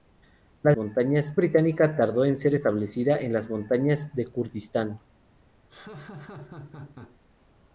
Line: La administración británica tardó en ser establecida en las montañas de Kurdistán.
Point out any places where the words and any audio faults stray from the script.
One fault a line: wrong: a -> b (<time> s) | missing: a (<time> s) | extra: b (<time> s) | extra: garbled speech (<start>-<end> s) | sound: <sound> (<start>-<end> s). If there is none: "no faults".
wrong: administración -> montañas (0.8 s)
sound: laugh (5.7-7.2 s)